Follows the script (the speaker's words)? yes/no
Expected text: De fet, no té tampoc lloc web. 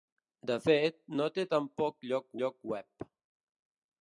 no